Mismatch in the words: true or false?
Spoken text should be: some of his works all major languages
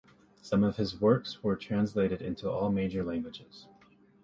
true